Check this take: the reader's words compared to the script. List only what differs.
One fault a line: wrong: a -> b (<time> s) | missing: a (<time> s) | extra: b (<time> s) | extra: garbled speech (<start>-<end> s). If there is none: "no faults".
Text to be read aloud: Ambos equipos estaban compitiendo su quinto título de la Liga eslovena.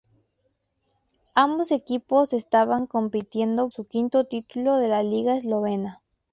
no faults